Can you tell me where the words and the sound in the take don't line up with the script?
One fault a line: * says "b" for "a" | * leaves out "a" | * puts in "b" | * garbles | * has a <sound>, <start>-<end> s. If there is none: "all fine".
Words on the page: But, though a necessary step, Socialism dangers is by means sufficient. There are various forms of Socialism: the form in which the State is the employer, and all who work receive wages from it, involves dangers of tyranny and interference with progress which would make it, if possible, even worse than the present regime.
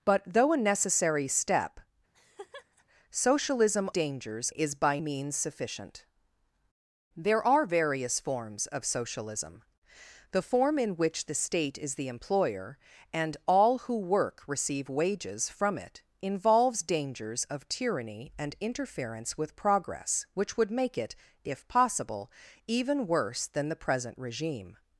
* has a laugh, 2.1-2.8 s